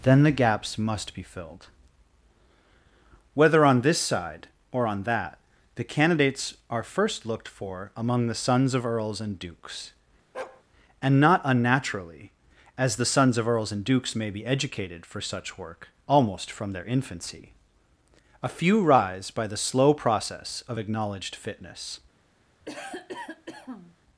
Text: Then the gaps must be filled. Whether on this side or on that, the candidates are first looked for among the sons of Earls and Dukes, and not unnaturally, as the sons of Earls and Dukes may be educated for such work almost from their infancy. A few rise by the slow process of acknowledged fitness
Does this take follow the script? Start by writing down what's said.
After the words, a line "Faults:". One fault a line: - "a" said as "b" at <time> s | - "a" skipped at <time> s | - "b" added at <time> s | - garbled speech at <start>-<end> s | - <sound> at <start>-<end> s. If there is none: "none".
Then the gaps must be filled. Whether on this side or on that, the candidates are first looked for among the sons of Earls and Dukes, and not unnaturally, as the sons of Earls and Dukes may be educated for such work almost from their infancy. A few rise by the slow process of acknowledged fitness
Faults:
- bark at 10.3-10.6 s
- cough at 22.6-24.0 s